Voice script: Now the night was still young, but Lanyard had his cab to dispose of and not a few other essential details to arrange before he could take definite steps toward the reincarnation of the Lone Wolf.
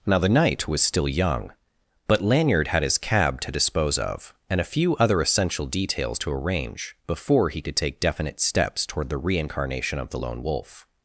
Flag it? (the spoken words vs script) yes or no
yes